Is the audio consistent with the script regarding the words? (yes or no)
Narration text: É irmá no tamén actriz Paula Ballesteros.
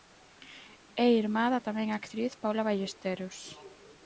no